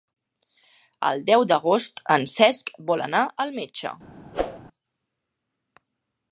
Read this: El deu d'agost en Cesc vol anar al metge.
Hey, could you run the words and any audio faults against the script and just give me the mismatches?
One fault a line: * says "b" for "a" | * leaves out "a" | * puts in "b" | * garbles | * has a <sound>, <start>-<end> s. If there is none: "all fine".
* has a whoosh, 4.3-4.6 s